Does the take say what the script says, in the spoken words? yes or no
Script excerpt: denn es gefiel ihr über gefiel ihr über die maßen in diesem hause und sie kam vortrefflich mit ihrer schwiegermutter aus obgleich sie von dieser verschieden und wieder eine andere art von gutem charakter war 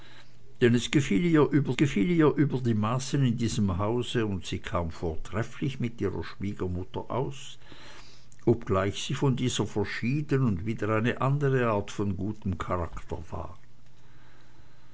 yes